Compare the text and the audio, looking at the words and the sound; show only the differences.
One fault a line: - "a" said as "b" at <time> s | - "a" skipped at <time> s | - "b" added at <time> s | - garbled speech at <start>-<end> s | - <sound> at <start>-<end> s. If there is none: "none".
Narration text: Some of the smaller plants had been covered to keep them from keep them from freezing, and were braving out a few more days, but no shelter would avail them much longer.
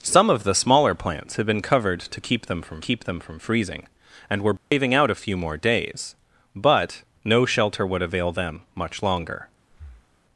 - dropout at 4.6-4.7 s
- breath at 9.7-10.2 s